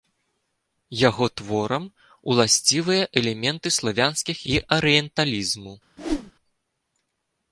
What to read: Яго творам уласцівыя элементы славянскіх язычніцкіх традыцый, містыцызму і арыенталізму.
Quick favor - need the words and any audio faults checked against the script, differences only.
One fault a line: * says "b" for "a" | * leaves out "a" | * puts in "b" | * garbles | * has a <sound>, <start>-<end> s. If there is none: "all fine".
* leaves out "язычніцкіх традыцый містыцызму"
* has a whoosh, 6.0-6.3 s